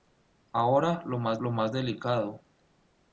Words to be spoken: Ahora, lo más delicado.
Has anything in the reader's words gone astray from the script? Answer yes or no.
yes